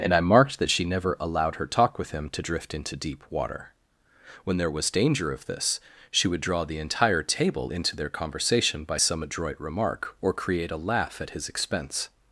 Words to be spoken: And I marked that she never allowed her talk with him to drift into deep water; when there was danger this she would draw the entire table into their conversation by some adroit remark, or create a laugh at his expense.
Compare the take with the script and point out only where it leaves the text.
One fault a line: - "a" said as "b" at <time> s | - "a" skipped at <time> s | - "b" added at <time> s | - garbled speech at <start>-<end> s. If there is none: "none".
- "of" added at 5.3 s